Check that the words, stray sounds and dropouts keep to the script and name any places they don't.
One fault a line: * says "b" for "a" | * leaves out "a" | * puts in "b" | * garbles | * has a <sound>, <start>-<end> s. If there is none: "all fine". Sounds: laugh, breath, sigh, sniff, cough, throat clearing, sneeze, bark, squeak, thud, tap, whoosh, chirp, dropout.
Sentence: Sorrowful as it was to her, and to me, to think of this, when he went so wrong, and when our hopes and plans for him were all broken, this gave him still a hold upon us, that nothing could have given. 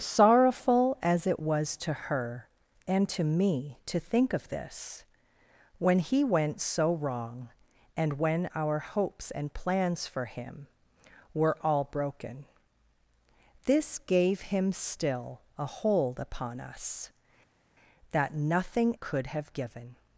all fine